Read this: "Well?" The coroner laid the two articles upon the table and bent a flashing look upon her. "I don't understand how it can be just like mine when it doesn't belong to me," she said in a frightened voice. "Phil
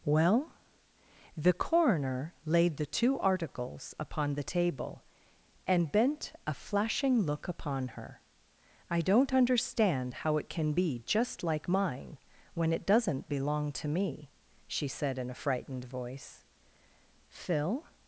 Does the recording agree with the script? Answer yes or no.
yes